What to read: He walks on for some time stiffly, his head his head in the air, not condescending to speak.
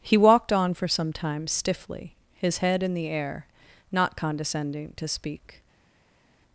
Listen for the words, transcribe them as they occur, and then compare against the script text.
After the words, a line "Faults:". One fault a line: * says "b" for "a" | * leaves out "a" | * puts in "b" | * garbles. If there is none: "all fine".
He walked on for some time stiffly, his head in the air, not condescending to speak.
Faults:
* says "walked" for "walks"
* leaves out "his head"